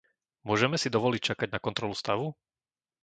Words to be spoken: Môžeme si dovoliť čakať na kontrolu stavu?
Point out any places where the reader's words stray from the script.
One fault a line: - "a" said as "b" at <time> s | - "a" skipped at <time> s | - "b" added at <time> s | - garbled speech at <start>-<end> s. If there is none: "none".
none